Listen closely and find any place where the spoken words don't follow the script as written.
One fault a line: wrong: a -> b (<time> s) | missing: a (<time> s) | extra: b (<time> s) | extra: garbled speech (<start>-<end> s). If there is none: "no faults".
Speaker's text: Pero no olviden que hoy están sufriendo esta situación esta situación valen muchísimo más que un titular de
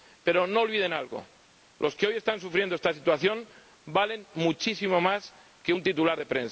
extra: algo los (0.9 s)
missing: esta situación (3.5 s)